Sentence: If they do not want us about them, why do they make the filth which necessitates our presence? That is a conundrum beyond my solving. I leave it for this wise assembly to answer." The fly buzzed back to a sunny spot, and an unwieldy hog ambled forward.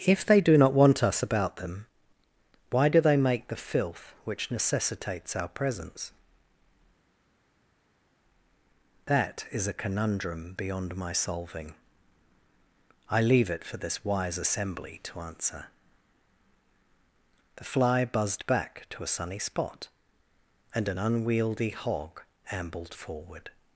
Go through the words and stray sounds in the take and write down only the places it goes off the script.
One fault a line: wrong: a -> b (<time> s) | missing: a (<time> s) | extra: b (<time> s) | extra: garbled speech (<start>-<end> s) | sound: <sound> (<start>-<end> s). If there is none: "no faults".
no faults